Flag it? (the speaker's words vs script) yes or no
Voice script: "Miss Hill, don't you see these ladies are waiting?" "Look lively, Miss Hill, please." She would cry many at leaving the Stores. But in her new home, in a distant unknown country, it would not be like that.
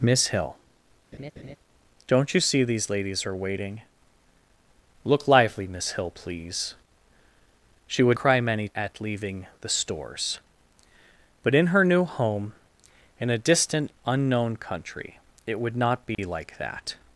no